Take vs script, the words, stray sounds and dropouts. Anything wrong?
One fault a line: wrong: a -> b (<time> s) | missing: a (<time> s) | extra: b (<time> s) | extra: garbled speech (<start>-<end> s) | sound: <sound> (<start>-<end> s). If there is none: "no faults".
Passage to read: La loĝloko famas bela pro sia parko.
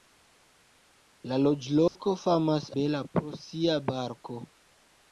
sound: dropout (1.9-2.0 s)